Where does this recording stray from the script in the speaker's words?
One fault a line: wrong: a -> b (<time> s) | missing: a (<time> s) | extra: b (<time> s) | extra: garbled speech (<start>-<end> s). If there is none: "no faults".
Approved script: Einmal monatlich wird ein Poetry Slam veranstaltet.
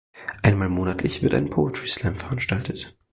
no faults